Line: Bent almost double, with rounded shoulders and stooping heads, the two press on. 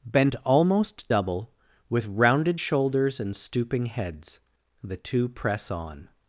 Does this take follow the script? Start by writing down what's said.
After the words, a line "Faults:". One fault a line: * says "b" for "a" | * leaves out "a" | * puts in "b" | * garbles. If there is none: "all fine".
Bent almost double, with rounded shoulders and stooping heads, the two press on.
Faults:
all fine